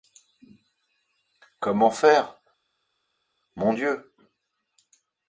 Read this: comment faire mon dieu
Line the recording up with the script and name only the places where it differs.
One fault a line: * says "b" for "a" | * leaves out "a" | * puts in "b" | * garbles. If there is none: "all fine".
all fine